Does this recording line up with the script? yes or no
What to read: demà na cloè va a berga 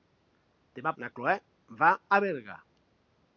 yes